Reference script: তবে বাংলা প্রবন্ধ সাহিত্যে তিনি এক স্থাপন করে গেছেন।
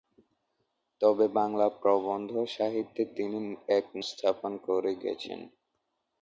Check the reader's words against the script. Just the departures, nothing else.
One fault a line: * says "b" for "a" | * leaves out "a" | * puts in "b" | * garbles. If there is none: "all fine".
all fine